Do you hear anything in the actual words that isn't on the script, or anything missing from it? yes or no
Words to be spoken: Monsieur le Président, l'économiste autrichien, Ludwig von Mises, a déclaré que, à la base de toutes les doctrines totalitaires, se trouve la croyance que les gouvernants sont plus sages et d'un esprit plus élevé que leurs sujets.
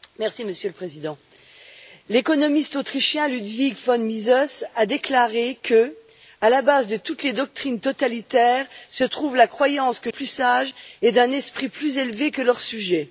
yes